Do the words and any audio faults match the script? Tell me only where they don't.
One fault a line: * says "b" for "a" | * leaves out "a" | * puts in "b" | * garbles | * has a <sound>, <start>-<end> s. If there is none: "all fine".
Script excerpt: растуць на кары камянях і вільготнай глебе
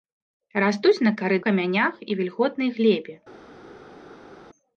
all fine